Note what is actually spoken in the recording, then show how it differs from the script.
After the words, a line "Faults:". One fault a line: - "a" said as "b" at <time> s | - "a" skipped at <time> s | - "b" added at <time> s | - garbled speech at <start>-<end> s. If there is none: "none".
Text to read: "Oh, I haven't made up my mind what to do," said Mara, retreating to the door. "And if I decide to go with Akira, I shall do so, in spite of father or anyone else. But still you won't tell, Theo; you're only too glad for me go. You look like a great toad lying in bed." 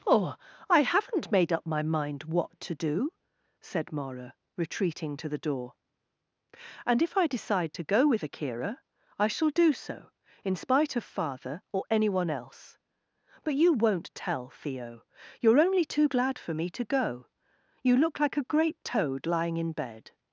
"Oh, I haven't made up my mind what to do," said Mara, retreating to the door. "And if I decide to go with Akira, I shall do so, in spite of father or anyone else. But you won't tell, Theo; you're only too glad for me to go. You look like a great toad lying in bed."
Faults:
- "still" skipped at 13.5 s
- "to" added at 16.7 s